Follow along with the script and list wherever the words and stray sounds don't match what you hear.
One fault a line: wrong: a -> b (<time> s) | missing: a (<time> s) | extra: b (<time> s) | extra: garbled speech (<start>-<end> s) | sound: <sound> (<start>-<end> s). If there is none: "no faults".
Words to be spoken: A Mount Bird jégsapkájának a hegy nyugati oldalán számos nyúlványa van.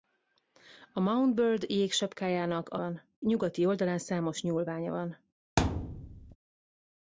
wrong: hegy -> van (2.8 s)
sound: thud (5.6-6.4 s)